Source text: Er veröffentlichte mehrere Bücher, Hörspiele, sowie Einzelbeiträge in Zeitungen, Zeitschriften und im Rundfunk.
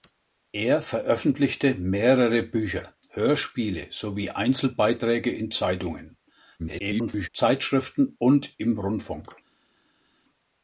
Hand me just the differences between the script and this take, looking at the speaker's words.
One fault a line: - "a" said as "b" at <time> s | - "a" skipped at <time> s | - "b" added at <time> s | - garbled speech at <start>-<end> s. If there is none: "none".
- garbled speech at 6.6-7.3 s